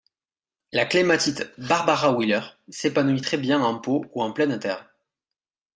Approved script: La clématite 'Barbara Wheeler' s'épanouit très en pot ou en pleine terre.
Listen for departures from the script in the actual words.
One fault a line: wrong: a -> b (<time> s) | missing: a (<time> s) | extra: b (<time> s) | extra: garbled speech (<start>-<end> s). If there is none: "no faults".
extra: bien (3.4 s)